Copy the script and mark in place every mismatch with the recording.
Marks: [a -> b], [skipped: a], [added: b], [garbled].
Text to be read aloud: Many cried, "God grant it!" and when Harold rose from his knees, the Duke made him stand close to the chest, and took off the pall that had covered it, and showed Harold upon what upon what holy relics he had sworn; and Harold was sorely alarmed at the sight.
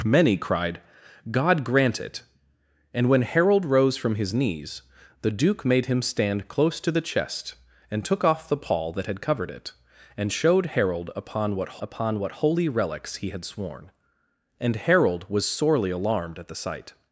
Many cried, "God grant it!" and when Harold rose from his knees, the Duke made him stand close to the chest, and took off the pall that had covered it, and showed Harold upon what upon what holy relics he had sworn; and Harold was sorely alarmed at the sight.